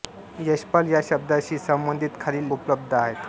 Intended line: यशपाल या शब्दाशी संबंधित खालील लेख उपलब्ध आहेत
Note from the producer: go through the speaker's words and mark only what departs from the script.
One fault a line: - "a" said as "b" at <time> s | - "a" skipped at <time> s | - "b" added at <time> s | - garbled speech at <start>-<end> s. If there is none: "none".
- "लेख" skipped at 2.5 s